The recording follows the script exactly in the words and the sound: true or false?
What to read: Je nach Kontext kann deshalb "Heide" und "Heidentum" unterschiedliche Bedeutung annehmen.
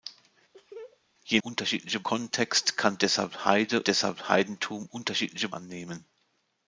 false